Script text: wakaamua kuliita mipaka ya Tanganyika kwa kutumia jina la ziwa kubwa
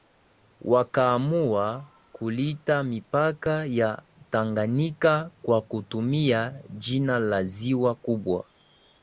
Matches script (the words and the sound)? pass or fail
pass